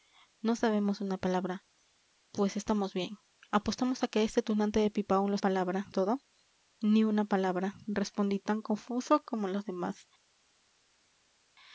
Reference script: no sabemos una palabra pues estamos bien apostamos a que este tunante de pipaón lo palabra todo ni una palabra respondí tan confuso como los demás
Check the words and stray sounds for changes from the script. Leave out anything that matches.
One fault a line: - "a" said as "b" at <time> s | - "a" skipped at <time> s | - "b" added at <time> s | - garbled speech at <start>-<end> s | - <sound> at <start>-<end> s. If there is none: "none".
none